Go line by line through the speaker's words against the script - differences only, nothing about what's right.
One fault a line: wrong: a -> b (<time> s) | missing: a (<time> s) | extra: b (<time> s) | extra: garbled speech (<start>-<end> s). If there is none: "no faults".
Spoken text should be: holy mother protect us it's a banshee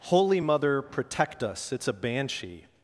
no faults